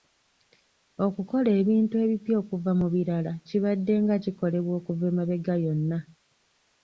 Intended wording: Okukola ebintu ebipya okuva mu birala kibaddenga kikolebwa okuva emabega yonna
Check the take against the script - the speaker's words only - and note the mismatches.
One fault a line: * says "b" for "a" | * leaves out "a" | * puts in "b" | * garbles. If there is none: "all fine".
all fine